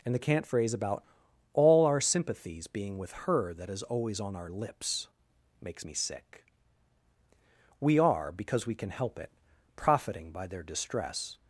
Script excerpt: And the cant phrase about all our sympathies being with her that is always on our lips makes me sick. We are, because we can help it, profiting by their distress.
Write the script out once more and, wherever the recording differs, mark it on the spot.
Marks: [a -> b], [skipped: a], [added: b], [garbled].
And the cant phrase about all our sympathies being with her that is always on our lips makes me sick. We are, because we can help it, profiting by their distress.